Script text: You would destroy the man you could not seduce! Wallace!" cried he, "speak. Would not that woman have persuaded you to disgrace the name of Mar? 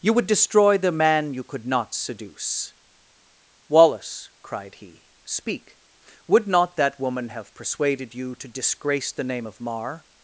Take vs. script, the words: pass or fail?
pass